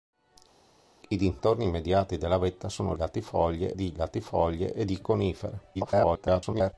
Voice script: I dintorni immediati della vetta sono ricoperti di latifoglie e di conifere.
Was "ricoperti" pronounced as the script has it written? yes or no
no